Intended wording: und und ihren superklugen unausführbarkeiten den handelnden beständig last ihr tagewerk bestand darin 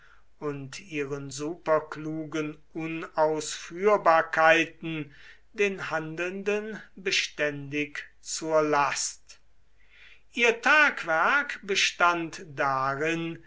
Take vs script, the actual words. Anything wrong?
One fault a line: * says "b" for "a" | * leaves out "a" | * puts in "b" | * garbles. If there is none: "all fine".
* leaves out "und"
* puts in "zur"